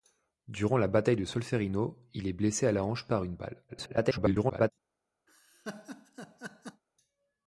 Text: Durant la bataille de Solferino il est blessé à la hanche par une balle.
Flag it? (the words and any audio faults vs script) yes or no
yes